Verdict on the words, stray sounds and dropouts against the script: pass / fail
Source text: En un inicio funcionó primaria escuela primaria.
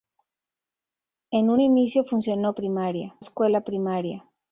pass